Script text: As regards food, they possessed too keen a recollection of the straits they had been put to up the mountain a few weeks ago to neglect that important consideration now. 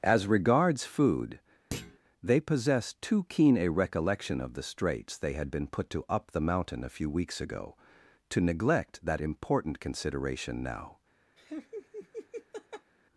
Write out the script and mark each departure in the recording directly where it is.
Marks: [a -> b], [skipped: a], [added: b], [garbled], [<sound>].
As regards food, [thud] they possessed too keen a recollection of the straits they had been put to up the mountain a few weeks ago to neglect that important consideration now. [laugh]